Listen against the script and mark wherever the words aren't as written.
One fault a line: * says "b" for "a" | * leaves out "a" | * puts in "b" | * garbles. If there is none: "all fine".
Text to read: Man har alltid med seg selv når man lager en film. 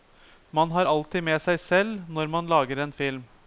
all fine